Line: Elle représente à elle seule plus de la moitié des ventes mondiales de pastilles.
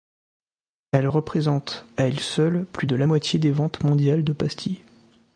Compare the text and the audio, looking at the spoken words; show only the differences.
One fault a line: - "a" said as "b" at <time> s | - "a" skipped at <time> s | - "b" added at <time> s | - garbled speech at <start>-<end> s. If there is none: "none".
none